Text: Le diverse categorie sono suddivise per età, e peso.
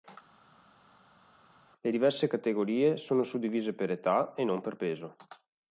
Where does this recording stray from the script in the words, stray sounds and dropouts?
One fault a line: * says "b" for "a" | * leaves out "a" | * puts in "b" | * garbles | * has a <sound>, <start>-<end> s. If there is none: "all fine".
* puts in "non per"